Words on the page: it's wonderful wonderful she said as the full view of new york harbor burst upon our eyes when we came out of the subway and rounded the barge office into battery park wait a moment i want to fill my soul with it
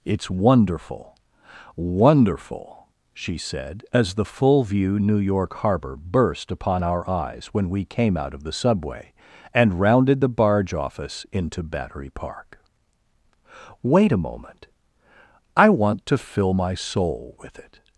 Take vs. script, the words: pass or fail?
fail